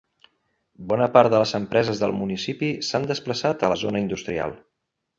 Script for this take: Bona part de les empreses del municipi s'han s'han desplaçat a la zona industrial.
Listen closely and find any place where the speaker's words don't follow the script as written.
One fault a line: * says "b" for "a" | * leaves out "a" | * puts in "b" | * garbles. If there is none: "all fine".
* leaves out "s'han"